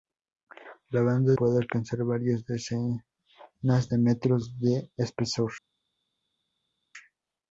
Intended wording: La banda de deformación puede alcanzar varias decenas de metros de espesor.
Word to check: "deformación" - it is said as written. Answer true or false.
false